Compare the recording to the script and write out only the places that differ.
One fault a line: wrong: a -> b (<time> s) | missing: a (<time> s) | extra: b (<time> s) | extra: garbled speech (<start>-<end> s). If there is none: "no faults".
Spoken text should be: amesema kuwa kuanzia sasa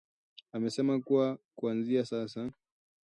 no faults